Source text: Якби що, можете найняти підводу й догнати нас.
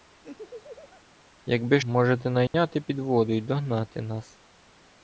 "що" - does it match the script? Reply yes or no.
no